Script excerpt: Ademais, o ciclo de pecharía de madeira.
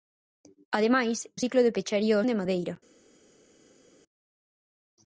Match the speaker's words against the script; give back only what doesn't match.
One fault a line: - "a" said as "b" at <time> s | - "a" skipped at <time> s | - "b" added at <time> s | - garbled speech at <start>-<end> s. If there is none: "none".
none